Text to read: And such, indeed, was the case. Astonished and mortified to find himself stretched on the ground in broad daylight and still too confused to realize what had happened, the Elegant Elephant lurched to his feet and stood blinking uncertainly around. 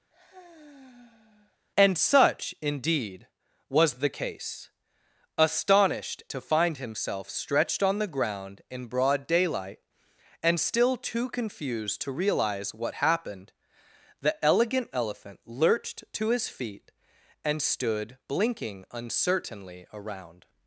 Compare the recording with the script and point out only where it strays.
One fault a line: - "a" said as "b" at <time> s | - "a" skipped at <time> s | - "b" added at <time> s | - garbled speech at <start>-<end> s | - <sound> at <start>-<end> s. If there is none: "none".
- sigh at 0.1-1.6 s
- "and mortified" skipped at 6.2 s
- "had" skipped at 13.0 s